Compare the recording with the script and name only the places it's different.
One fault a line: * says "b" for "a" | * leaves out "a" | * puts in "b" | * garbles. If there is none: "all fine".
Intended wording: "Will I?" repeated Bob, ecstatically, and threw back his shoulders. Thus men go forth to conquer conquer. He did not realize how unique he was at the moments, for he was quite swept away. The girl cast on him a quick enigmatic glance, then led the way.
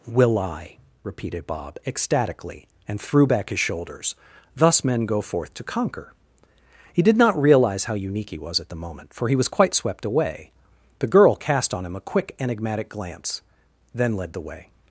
* leaves out "conquer"
* says "moment" for "moments"